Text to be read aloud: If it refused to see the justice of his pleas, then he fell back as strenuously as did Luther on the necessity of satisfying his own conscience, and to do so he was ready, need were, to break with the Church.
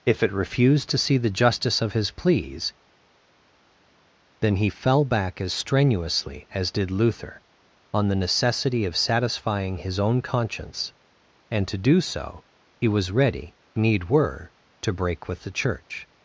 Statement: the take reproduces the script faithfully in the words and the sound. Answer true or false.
true